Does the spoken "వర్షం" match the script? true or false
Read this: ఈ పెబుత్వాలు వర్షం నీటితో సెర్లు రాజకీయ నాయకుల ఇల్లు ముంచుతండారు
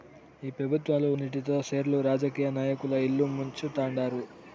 false